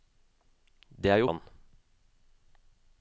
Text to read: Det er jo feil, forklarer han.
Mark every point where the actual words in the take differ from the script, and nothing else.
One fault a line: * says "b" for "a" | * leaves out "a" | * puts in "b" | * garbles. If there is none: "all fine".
* leaves out "feil forklarer"